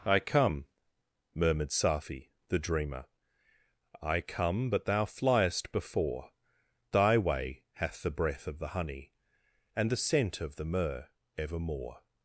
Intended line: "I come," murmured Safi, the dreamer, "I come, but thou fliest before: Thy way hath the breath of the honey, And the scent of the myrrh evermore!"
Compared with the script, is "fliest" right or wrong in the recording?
right